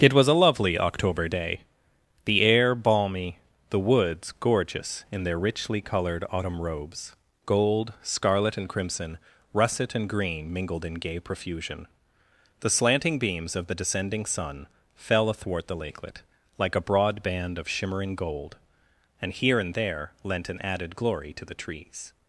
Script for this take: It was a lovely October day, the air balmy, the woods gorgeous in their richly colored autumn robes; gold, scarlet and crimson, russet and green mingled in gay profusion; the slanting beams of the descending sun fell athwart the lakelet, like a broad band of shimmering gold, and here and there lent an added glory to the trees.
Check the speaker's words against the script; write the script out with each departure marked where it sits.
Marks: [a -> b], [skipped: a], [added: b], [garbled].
It was a lovely October day, the air balmy, the woods gorgeous in their richly colored autumn robes; gold, scarlet and crimson, russet and green mingled in gay profusion; the slanting beams of the descending sun fell athwart the lakelet, like a broad band of shimmering gold, and here and there lent an added glory to the trees.